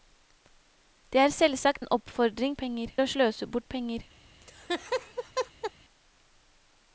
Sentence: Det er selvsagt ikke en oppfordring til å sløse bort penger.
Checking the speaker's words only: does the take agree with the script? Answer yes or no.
no